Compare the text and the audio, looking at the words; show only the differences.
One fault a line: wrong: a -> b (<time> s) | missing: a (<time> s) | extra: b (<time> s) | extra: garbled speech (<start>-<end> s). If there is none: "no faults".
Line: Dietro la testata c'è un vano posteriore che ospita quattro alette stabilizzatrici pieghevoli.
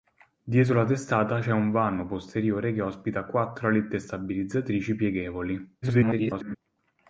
extra: garbled speech (5.8-6.6 s)